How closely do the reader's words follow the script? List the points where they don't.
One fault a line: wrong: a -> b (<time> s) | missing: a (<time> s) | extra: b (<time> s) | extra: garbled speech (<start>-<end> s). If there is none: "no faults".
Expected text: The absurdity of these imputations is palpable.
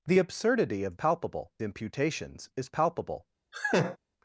wrong: these -> palpable (0.9 s)